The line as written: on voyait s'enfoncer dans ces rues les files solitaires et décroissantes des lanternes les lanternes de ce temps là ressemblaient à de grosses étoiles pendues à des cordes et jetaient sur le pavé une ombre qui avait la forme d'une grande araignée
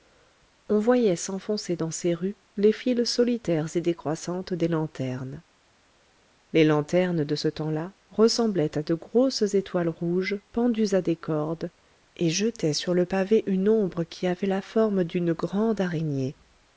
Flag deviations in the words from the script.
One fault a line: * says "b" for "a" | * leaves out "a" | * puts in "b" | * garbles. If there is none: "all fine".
* puts in "rouges"